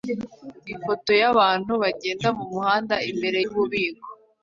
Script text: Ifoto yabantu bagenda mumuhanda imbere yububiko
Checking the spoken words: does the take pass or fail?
pass